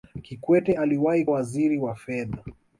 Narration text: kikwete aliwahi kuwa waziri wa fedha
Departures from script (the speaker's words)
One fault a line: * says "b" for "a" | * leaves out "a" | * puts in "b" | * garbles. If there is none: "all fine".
* leaves out "kuwa"